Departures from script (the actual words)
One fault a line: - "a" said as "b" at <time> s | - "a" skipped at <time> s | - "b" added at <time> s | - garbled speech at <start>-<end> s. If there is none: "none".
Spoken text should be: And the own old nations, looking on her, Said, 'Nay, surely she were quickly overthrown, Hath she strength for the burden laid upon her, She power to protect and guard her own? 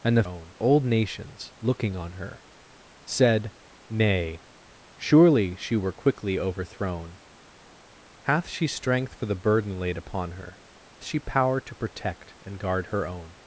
none